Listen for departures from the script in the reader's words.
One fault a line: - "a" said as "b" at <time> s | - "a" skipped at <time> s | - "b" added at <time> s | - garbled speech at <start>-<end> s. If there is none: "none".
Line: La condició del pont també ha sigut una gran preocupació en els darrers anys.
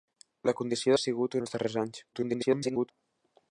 - "del pont també" skipped at 0.9 s
- "una gran preocupació" skipped at 1.4 s
- garbled speech at 2.1-2.9 s